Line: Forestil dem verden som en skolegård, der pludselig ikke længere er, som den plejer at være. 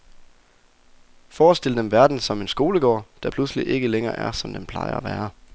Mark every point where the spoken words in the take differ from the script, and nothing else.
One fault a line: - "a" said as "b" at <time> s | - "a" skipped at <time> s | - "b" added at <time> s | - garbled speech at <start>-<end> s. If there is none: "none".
none